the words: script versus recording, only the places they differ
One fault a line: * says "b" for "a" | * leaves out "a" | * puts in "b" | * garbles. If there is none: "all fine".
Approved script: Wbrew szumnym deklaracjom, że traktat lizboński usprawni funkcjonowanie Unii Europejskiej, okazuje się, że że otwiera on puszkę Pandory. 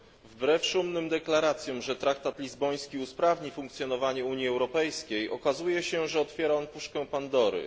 * leaves out "że"